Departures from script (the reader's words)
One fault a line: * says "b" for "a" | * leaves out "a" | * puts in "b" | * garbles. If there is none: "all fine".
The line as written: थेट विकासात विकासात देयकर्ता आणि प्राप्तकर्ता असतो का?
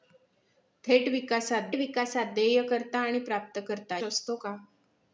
all fine